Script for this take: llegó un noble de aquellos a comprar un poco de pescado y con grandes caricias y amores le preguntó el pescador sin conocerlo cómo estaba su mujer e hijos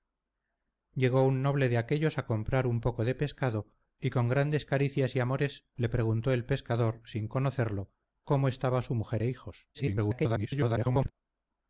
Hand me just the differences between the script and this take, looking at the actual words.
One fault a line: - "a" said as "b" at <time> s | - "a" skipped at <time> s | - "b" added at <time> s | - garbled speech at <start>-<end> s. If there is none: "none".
- garbled speech at 9.7-11.1 s